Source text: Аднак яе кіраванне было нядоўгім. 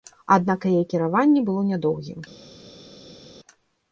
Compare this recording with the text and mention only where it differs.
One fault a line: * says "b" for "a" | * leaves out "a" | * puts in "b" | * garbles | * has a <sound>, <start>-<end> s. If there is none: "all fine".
all fine